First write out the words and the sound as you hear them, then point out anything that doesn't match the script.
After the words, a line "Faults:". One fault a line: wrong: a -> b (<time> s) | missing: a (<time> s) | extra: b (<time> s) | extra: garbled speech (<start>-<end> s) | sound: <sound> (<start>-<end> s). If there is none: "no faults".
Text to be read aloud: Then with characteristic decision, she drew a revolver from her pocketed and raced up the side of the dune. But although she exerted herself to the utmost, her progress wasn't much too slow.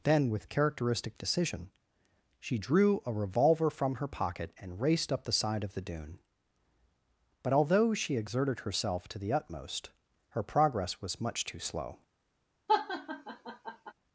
Then with characteristic decision, she drew a revolver from her pocket and raced up the side of the dune. But although she exerted herself to the utmost, her progress was much too slow.
Faults:
wrong: pocketed -> pocket (4.1 s)
wrong: wasn't -> was (11.0 s)
sound: laugh (12.7-13.9 s)